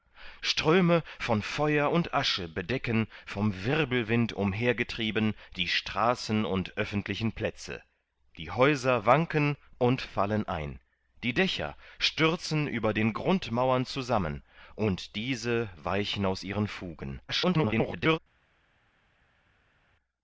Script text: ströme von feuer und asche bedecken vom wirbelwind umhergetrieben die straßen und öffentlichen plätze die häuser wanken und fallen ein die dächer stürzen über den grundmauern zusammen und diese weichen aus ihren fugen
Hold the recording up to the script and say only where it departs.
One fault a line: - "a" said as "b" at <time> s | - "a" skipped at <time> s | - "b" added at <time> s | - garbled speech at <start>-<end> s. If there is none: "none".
- garbled speech at 17.3-18.2 s